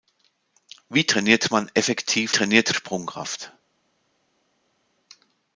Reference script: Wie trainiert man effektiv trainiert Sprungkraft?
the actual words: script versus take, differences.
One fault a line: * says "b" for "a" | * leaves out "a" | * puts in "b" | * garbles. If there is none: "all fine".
all fine